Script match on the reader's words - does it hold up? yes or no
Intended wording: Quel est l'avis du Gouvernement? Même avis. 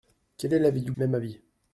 no